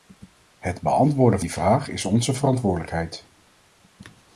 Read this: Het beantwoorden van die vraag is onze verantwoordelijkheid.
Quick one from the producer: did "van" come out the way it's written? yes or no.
no